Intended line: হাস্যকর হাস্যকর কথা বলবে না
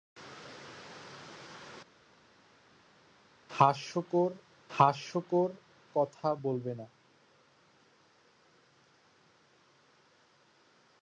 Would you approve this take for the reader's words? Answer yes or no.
yes